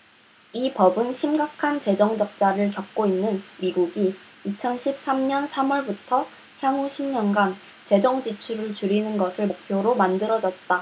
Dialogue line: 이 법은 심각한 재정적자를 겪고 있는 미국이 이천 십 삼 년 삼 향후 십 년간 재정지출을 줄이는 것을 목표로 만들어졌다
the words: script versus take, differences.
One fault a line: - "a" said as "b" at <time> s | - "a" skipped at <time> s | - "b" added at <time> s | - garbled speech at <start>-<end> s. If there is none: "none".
- "월부터" added at 5.7 s